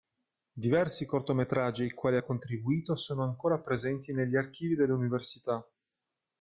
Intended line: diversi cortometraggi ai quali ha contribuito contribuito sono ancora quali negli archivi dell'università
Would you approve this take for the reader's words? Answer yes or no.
no